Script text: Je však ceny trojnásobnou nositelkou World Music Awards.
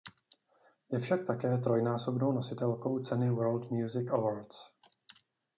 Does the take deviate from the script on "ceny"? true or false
true